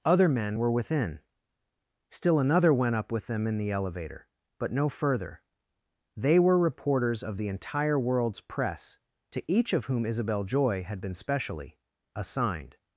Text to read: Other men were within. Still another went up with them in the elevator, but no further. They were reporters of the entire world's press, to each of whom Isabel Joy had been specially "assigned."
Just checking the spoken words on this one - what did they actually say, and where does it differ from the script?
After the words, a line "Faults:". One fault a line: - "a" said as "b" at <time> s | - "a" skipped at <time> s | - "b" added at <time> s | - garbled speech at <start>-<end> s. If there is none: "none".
Other men were within. Still another went up with them in the elevator, but no further. They were reporters of the entire world's press, to each of whom Isabel Joy had been specially "assigned."
Faults:
none